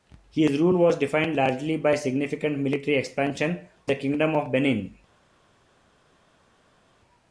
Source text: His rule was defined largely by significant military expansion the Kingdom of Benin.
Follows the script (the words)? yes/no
yes